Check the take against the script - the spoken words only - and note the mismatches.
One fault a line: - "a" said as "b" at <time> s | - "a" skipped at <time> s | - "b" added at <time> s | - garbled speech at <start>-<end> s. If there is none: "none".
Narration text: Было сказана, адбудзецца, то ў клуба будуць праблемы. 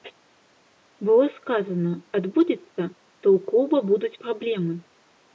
none